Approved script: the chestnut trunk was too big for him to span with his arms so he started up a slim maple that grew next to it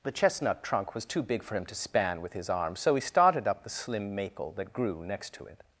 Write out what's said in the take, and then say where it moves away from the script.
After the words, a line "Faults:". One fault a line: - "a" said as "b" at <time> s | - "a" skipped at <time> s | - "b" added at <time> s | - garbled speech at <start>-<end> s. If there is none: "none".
the chestnut trunk was too big for him to span with his arms so he started up the slim maple that grew next to it
Faults:
- "a" said as "the" at 3.6 s